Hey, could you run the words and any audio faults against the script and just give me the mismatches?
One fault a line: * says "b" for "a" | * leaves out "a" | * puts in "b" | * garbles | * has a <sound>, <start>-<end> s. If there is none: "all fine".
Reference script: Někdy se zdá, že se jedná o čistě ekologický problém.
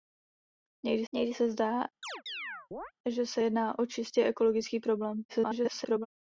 * puts in "někdy"
* has a chirp, 2.0-2.9 s
* garbles